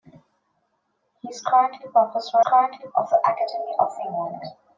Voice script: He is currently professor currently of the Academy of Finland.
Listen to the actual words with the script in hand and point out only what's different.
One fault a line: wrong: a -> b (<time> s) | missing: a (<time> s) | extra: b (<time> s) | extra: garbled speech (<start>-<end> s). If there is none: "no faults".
no faults